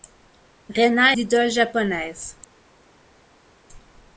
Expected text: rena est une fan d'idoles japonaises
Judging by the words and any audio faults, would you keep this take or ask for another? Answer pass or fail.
fail